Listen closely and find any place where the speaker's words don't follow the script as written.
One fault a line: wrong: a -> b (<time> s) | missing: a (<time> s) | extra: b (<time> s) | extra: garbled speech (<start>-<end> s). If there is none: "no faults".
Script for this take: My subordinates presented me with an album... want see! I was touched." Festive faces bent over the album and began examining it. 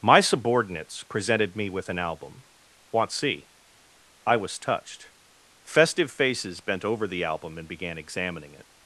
no faults